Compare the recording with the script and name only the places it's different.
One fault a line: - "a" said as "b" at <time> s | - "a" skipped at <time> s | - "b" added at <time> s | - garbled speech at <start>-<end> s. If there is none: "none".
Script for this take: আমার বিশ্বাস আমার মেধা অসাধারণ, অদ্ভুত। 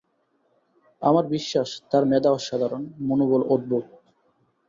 - "আমার" said as "তার" at 1.9 s
- "মনোবল" added at 3.1 s